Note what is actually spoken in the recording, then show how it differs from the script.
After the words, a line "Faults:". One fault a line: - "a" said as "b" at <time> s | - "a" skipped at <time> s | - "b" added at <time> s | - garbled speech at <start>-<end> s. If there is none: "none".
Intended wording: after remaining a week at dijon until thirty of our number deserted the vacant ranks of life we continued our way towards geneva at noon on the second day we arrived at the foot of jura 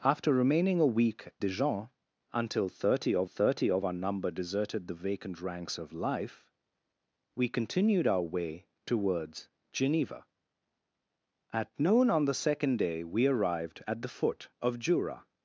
after remaining a week dijon until thirty of thirty of our number deserted the vacant ranks of life we continued our way towards geneva at noon on the second day we arrived at the foot of jura
Faults:
- "at" skipped at 1.3 s
- "thirty of" added at 3.2 s